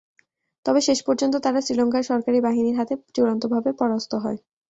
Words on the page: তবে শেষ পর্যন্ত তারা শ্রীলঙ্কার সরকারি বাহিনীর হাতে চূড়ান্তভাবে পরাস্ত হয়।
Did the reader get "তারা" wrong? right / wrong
right